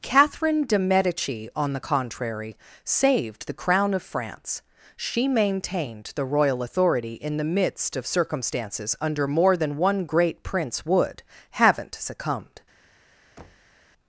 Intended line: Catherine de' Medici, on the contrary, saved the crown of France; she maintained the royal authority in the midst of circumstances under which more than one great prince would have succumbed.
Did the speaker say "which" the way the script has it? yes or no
no